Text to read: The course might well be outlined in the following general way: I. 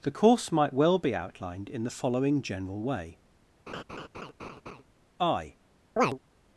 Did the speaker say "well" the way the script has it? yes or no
yes